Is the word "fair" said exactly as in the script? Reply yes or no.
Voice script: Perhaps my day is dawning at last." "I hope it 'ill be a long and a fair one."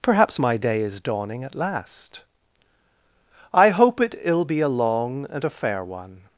yes